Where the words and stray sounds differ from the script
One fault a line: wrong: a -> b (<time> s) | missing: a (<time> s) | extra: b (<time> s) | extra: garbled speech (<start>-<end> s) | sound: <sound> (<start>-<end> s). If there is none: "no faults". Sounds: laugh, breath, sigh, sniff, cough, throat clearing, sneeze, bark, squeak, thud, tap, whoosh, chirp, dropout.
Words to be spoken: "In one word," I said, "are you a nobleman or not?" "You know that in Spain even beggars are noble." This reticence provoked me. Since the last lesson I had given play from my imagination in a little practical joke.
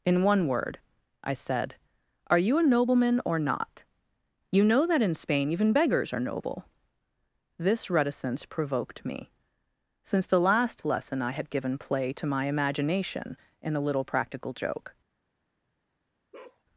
wrong: from -> to (12.1 s)
sound: bark (16.3-16.6 s)